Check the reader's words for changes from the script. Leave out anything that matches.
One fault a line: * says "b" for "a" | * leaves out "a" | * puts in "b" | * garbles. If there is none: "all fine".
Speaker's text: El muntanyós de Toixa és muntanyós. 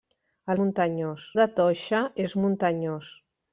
all fine